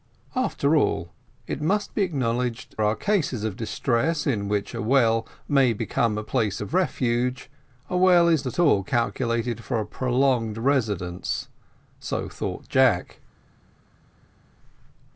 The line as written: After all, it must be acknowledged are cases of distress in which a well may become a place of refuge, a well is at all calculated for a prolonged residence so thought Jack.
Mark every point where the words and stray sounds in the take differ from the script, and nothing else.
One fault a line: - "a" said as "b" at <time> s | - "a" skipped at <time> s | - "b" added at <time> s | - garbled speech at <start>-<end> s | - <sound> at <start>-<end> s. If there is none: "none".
none